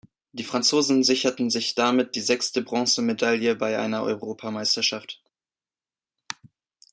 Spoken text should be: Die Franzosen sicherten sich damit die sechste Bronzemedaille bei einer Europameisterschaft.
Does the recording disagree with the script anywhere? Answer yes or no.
no